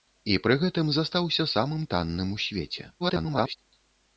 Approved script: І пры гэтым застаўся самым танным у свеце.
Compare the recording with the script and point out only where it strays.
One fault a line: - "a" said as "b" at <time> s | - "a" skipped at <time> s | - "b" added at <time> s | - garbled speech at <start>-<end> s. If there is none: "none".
- garbled speech at 3.0-3.6 s